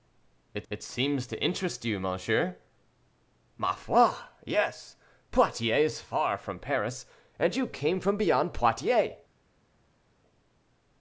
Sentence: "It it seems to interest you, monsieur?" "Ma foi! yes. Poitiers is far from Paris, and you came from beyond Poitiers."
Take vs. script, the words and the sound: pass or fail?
pass